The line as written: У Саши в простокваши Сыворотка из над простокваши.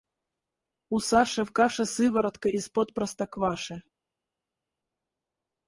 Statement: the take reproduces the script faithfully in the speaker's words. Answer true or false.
false